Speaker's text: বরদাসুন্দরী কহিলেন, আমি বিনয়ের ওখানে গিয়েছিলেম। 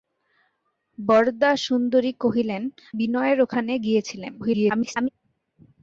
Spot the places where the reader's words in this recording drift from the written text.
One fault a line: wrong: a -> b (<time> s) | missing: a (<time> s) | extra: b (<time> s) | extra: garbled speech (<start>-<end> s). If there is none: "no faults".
missing: আমি (2.6 s)
extra: garbled speech (4.4-5.1 s)